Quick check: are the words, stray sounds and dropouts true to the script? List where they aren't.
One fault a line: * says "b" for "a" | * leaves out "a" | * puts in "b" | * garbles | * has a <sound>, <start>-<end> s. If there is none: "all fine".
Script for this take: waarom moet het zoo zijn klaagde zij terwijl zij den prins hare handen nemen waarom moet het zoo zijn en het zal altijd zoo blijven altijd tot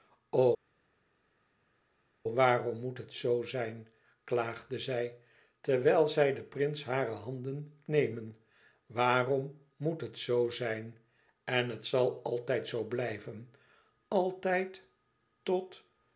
all fine